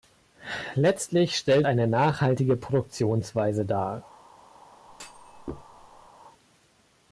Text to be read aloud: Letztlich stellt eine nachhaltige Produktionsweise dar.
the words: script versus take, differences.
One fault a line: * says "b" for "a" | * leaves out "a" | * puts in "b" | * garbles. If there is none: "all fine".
all fine